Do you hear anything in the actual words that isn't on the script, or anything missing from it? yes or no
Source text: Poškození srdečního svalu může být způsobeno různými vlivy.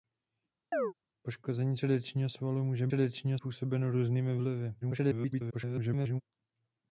yes